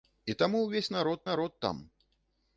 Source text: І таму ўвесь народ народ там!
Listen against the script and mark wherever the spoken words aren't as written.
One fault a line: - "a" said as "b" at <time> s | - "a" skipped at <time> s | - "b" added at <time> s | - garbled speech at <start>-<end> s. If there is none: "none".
none